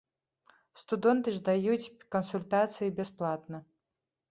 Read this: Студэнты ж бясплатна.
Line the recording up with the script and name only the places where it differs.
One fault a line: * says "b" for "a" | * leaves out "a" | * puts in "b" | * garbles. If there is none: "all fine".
* puts in "даюць кансультацыі"